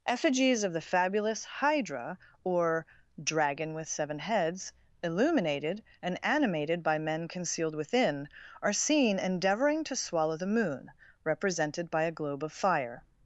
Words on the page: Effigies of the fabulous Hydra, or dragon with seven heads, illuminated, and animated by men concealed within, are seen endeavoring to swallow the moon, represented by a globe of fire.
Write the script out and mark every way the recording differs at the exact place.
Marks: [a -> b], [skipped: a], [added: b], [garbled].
Effigies of the fabulous Hydra, or dragon with seven heads, illuminated, and animated by men concealed within, are seen endeavoring to swallow the moon, represented by a globe of fire.